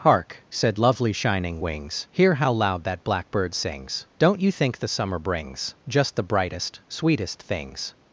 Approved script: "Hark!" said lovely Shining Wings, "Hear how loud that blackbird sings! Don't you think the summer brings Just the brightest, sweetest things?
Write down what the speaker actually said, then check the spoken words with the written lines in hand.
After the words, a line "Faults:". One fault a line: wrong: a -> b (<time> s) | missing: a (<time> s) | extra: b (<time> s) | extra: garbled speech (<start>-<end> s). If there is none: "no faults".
"Hark!" said lovely Shining Wings, "Hear how loud that blackbird sings! Don't you think the summer brings Just the brightest, sweetest things?
Faults:
no faults